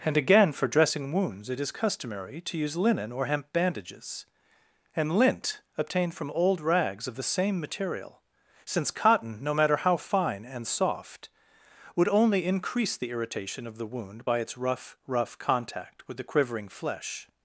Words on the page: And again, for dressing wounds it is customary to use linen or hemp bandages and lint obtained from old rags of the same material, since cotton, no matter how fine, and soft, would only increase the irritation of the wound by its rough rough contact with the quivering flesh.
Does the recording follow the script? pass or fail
pass